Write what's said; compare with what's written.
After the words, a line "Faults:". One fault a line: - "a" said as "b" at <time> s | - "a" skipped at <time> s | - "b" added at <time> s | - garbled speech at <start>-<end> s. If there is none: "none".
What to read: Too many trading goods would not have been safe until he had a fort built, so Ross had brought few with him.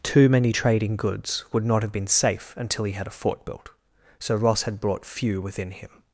Too many trading goods would not have been safe until he had a fort built, so Ross had brought few within him.
Faults:
- "with" said as "within" at 5.4 s